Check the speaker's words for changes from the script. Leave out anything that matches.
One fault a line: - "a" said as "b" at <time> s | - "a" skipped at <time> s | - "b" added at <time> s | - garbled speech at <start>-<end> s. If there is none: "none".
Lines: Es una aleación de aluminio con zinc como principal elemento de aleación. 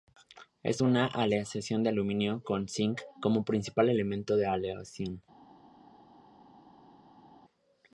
none